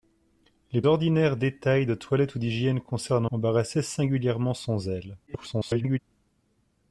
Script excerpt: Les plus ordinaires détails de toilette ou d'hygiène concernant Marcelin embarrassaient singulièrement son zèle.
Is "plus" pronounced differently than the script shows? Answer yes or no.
yes